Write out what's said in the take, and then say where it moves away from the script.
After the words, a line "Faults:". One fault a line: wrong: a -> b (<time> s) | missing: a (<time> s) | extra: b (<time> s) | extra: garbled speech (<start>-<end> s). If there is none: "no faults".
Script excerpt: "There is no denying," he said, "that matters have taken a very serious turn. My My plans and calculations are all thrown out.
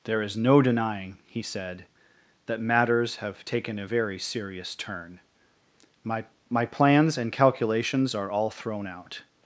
"There is no denying," he said, "that matters have taken a very serious turn. My My plans and calculations are all thrown out.
Faults:
no faults